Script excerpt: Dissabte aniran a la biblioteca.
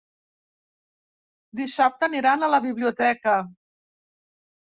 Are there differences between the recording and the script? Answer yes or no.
no